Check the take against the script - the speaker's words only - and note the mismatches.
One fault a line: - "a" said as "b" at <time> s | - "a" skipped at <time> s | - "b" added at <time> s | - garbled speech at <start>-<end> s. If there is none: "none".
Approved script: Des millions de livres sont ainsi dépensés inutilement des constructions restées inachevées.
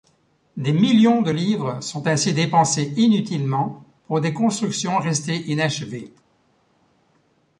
- "pour" added at 4.1 s